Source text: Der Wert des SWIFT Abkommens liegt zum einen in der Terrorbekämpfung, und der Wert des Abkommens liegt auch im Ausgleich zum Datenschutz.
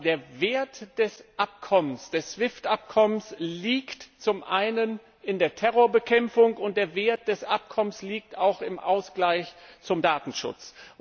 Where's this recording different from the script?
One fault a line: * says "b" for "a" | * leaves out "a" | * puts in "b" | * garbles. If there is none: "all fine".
all fine